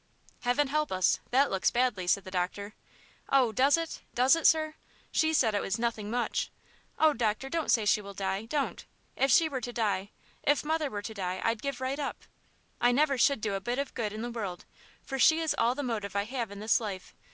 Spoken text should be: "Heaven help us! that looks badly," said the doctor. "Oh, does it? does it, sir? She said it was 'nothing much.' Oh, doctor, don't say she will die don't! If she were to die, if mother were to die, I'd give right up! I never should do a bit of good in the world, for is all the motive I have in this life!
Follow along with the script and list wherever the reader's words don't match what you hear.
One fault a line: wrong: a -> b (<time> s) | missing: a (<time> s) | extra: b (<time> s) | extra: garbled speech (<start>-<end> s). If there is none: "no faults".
extra: she (15.2 s)